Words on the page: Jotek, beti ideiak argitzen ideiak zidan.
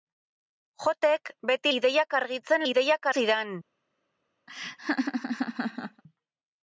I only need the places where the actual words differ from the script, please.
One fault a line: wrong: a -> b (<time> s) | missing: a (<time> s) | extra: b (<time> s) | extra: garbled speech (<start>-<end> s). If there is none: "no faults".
no faults